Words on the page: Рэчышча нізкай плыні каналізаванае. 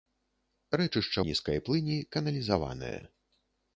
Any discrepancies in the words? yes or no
no